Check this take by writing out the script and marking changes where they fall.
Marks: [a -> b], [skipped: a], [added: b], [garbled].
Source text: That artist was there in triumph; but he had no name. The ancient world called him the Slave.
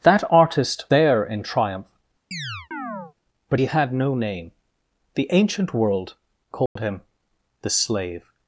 That artist [skipped: was] there in triumph; but he had no name. The ancient world called him the Slave.